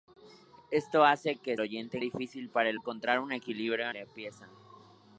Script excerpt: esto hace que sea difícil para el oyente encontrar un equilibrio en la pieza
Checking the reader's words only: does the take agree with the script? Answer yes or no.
no